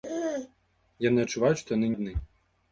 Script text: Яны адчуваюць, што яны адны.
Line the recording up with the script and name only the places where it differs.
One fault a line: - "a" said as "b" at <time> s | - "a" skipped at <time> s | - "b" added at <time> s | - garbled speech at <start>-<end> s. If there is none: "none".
none